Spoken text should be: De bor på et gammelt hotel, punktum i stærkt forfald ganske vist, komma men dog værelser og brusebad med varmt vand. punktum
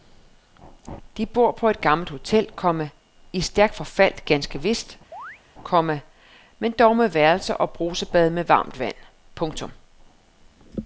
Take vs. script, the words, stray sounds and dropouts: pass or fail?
fail